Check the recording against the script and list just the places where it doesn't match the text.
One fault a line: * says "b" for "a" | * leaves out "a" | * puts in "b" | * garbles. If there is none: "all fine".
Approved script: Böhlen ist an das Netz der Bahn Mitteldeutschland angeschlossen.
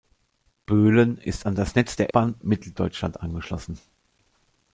all fine